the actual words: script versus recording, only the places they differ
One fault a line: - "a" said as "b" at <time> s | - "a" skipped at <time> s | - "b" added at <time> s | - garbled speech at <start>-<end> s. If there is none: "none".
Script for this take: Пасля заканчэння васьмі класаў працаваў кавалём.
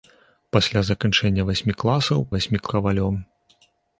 - "працаваў" said as "васьмі" at 2.4 s